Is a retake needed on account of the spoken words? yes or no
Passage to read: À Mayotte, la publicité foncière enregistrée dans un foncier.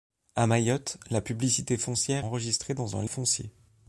no